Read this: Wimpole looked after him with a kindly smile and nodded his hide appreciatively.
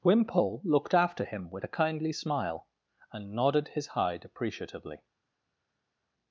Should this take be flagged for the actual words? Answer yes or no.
no